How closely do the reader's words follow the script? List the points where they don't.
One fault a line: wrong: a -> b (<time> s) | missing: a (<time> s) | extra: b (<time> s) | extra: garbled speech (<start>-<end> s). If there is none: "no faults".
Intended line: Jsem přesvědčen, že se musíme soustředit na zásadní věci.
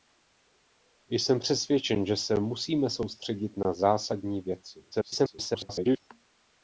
extra: garbled speech (4.9-6.0 s)